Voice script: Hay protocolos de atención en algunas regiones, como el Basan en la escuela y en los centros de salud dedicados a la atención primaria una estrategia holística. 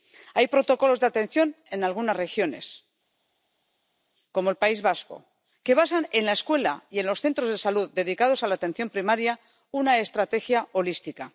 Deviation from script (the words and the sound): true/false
true